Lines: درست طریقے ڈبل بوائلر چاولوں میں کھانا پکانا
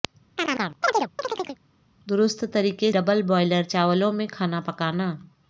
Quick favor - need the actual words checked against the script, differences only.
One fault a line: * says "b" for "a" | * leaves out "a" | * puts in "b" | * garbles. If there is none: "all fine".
all fine